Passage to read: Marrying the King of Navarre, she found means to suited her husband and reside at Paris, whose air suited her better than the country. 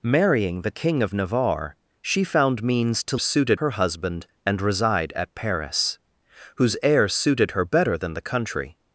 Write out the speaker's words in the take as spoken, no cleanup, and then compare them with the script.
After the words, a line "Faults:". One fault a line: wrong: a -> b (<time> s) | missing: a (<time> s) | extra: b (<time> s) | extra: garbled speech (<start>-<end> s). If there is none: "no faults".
Marrying the King of Navarre, she found means to suited her husband and reside at Paris, whose air suited her better than the country.
Faults:
no faults